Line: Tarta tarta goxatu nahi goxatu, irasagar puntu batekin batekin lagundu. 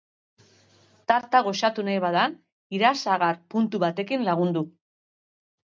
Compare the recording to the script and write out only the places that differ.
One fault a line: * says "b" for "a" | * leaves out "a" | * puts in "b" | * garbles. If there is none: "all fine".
* leaves out "tarta"
* says "bada" for "goxatu"
* leaves out "batekin"